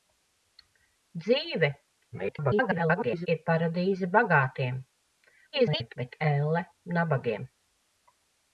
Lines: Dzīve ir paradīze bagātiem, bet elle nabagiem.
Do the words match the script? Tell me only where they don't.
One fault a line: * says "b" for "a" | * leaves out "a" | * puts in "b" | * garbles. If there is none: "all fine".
* garbles
* garbles